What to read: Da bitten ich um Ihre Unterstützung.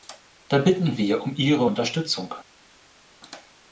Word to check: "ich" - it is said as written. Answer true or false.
false